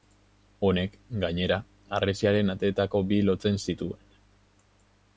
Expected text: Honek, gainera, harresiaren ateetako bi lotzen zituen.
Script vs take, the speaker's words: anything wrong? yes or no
no